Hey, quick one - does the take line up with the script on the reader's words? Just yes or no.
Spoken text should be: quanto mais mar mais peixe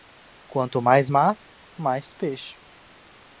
yes